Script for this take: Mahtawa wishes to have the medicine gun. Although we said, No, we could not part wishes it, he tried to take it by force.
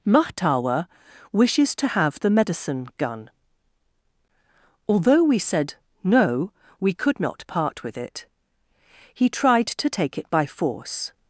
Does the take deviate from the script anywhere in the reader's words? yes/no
yes